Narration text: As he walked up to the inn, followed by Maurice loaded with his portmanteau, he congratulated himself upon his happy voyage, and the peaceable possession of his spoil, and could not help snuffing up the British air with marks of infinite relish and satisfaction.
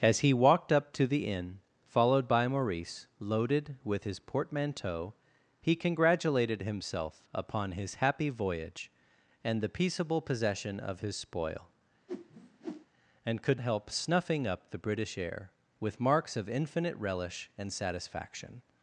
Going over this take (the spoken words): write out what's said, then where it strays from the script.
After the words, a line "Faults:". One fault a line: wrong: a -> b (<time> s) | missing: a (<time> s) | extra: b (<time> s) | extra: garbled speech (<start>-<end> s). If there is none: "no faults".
As he walked up to the inn, followed by Maurice loaded with his portmanteau, he congratulated himself upon his happy voyage, and the peaceable possession of his spoil, and could help snuffing up the British air with marks of infinite relish and satisfaction.
Faults:
missing: not (13.6 s)